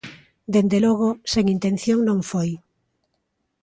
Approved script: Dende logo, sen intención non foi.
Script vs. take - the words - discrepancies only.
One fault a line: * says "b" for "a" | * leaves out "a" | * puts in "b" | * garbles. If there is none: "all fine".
all fine